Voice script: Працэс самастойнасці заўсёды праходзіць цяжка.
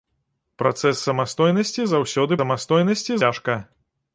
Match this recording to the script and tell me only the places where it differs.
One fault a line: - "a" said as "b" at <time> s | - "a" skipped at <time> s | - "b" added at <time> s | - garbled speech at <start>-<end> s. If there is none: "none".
- "праходзіць" said as "самастойнасці" at 2.4 s